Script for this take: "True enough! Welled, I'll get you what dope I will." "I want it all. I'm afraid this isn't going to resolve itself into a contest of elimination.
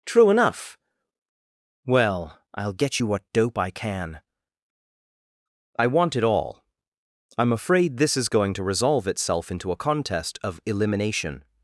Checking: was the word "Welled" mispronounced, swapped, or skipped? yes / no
yes